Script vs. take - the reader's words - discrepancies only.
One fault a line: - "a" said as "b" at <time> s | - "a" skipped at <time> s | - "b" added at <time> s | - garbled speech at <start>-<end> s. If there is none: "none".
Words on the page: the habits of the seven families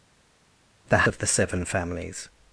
- "habits" skipped at 1.1 s